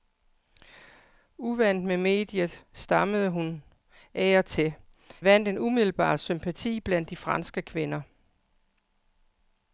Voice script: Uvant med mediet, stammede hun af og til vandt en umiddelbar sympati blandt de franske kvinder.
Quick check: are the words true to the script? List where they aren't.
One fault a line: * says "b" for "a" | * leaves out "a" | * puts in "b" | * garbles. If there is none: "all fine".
all fine